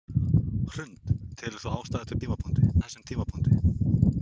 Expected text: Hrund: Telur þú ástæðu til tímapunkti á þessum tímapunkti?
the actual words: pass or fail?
pass